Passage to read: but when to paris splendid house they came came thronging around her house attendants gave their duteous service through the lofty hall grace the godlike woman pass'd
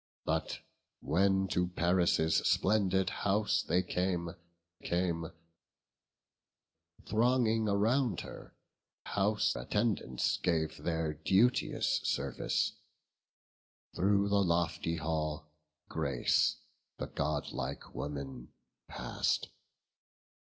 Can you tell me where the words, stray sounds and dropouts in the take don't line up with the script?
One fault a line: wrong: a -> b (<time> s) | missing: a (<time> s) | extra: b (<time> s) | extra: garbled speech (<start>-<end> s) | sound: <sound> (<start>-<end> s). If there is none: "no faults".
no faults